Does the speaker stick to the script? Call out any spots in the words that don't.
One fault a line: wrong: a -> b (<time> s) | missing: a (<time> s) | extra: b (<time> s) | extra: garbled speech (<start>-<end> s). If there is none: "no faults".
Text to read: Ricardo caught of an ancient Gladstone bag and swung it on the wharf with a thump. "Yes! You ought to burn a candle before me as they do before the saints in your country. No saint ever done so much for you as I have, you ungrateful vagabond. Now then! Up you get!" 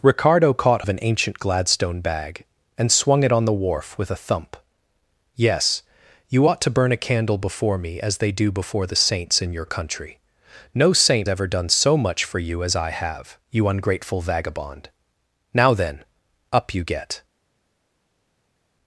no faults